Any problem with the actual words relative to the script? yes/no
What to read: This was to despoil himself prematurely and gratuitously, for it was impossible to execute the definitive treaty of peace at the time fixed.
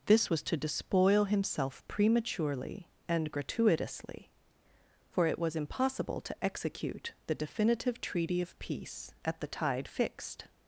yes